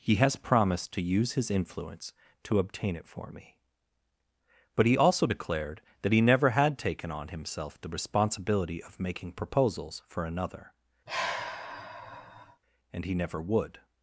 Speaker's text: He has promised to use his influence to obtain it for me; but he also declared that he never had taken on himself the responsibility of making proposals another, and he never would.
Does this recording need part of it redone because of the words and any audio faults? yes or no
yes